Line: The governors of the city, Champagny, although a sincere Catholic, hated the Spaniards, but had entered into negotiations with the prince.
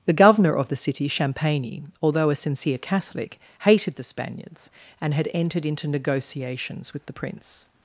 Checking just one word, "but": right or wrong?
wrong